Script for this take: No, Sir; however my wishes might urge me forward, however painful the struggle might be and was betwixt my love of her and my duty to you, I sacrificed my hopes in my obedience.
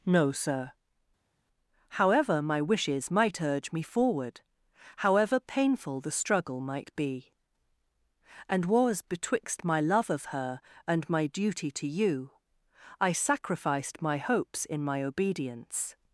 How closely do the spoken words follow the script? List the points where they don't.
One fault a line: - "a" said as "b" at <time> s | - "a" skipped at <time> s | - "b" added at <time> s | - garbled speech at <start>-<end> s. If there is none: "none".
none